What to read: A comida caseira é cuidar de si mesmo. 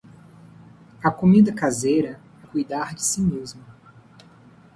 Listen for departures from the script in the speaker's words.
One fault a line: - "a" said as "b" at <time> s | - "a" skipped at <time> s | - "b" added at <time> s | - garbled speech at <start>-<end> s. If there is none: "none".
none